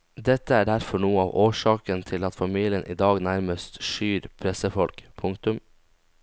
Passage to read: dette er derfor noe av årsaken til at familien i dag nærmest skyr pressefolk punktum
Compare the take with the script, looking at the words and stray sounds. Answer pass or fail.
pass